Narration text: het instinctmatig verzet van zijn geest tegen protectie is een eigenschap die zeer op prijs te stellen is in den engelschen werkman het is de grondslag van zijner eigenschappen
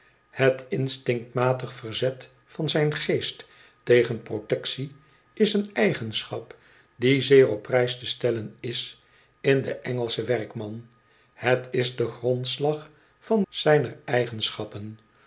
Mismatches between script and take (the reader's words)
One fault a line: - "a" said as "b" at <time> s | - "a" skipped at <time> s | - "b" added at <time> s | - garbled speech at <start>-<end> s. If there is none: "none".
none